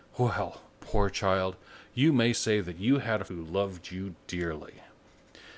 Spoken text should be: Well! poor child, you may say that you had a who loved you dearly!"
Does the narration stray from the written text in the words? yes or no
no